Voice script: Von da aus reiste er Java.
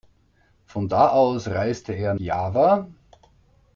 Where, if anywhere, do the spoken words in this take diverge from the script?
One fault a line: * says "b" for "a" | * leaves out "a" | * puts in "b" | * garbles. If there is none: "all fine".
all fine